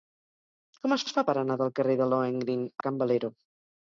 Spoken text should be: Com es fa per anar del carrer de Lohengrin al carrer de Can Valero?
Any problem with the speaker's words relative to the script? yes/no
yes